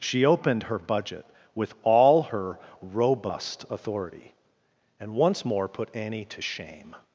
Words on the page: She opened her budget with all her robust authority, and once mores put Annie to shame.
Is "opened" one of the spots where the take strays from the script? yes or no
no